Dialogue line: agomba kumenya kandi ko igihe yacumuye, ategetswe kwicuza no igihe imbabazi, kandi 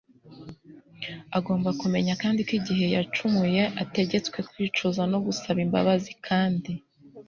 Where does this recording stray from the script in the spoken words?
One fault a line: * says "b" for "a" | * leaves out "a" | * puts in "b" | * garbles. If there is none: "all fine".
* says "gusaba" for "igihe"